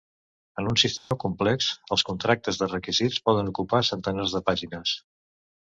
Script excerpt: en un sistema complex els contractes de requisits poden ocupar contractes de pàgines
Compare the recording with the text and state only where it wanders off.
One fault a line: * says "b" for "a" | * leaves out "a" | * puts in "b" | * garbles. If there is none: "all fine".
* says "centenars" for "contractes"